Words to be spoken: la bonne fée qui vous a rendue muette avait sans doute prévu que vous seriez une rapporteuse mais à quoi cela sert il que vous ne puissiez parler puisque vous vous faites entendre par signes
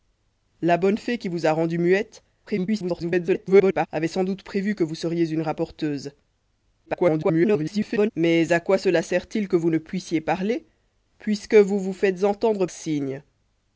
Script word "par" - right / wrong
wrong